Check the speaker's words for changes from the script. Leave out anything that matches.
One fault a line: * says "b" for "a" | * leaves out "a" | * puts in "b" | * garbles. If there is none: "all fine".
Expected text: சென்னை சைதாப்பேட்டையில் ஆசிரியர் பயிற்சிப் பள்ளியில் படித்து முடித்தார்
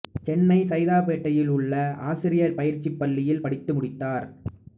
* puts in "உள்ள"